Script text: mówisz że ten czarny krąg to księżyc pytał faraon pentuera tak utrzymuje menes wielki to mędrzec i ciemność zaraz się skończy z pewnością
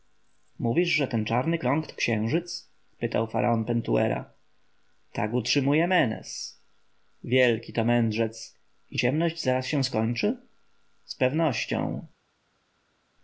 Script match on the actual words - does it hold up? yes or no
yes